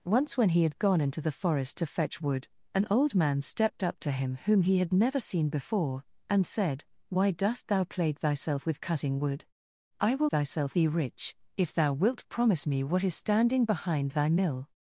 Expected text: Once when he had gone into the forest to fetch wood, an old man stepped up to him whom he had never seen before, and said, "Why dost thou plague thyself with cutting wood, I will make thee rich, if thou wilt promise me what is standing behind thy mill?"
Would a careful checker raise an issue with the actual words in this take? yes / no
yes